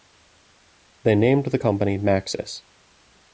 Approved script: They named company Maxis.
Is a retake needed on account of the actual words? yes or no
yes